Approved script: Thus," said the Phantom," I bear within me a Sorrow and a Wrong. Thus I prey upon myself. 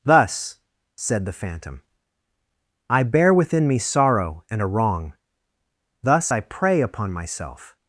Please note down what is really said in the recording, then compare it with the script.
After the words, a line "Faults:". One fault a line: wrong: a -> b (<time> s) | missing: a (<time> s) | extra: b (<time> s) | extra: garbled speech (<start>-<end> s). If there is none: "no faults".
Thus," said the Phantom," I bear within me Sorrow and a Wrong. Thus I prey upon myself.
Faults:
missing: a (3.8 s)